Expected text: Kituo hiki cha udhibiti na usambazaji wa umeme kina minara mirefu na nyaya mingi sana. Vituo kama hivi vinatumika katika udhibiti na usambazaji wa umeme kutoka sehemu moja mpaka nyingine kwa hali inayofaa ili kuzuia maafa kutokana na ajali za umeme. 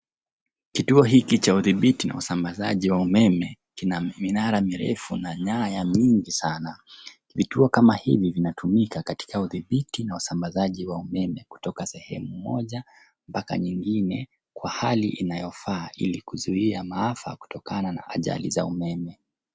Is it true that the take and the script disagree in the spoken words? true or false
false